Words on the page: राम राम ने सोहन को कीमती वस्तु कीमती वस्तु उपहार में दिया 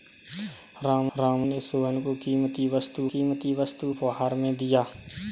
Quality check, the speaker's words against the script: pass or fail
pass